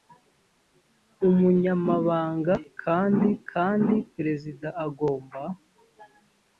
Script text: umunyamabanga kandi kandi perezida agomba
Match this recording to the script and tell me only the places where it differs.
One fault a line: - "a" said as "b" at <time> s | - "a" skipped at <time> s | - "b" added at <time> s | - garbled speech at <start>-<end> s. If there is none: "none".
none